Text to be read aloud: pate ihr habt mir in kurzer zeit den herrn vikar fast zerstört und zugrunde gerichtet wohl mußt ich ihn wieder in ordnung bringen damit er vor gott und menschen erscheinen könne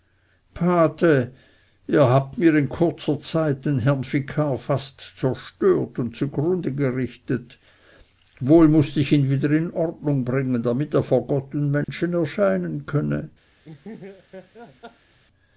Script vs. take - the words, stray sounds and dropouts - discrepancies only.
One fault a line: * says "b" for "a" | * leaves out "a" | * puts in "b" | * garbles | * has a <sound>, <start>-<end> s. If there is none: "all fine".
* has a dropout, 11.8-11.9 s
* has a laugh, 13.6-15.2 s